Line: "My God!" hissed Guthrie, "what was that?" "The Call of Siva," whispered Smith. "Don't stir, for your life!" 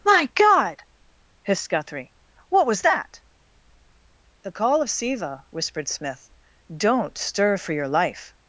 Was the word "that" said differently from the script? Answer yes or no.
no